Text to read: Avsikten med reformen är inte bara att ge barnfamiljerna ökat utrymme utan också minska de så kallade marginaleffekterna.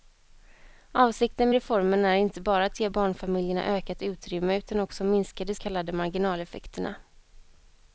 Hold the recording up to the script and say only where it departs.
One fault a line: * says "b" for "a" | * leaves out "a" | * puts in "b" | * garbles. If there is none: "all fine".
* leaves out "med"
* leaves out "så"